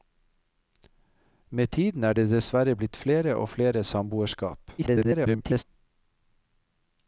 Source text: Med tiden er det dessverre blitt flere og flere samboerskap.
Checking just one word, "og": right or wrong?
right